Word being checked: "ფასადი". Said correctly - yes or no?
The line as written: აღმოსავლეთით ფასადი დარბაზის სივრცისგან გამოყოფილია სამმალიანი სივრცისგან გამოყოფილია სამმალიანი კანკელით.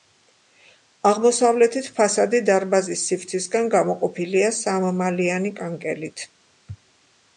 yes